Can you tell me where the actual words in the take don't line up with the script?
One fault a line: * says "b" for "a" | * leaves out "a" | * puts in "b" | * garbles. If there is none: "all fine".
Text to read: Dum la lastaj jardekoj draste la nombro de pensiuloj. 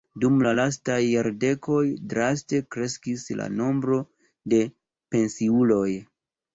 * puts in "kreskis"